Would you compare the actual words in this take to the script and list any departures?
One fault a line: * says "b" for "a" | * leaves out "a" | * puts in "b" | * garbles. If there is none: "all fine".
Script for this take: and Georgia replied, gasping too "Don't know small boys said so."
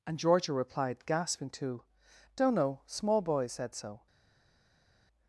all fine